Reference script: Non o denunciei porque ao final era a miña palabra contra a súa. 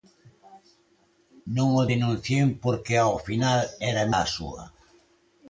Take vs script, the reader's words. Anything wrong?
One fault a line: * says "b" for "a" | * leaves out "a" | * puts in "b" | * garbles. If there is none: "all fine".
* leaves out "miña palabra contra"